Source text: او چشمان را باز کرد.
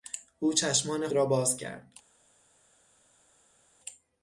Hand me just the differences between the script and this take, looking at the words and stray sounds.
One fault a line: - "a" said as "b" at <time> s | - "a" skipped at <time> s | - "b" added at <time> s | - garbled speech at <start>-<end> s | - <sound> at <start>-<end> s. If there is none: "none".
none